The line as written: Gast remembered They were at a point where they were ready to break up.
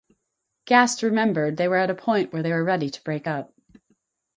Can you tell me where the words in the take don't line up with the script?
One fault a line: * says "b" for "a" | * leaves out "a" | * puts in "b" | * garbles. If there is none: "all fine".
all fine